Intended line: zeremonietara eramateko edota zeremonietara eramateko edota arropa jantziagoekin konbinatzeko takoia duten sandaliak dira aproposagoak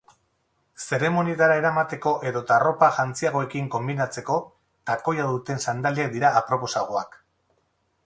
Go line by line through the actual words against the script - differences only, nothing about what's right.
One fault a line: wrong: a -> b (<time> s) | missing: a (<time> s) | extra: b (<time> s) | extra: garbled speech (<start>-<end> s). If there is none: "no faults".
missing: zeremonietara eramateko edota (2.6 s)